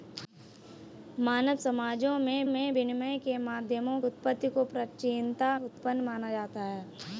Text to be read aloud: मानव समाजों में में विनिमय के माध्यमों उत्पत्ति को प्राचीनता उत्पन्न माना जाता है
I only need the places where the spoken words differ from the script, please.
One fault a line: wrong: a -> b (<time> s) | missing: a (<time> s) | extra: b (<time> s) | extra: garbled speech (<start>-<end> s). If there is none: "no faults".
no faults